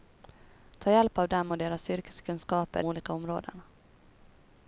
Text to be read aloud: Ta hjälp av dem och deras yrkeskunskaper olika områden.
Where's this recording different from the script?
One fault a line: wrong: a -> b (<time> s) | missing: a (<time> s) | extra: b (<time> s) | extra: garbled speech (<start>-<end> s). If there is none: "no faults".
no faults